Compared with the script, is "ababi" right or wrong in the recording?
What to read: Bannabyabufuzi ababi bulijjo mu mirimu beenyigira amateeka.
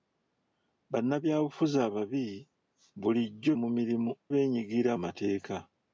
right